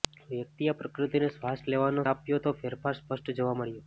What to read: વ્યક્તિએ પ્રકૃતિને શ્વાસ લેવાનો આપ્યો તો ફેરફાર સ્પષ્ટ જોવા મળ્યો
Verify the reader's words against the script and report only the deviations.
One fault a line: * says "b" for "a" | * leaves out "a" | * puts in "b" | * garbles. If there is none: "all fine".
all fine